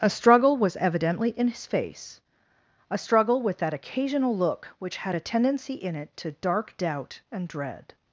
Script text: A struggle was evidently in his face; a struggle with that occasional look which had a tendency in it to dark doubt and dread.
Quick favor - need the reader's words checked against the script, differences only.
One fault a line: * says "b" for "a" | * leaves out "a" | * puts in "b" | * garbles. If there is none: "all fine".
all fine